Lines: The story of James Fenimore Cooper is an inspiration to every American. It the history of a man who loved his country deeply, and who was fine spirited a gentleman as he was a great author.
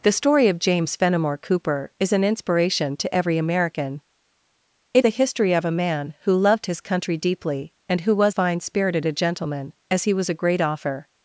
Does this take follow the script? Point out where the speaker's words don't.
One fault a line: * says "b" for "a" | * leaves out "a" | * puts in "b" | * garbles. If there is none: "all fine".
all fine